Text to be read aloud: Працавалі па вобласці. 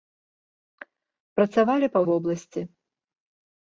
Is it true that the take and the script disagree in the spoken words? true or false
false